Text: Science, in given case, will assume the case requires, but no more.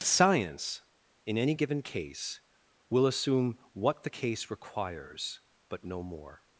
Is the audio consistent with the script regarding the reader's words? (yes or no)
no